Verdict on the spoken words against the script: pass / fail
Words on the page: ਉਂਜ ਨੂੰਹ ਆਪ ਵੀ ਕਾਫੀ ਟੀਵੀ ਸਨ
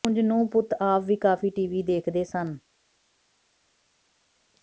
fail